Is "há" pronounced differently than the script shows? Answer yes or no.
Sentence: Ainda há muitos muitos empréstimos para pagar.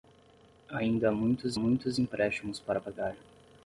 no